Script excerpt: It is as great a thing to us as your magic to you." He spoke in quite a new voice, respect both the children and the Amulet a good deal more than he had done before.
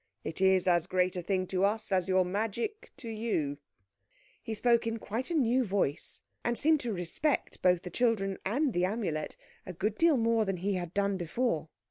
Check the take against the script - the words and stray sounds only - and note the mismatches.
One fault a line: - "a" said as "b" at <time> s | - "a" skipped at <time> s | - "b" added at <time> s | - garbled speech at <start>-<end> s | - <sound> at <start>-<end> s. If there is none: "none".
- "and seemed to" added at 6.4 s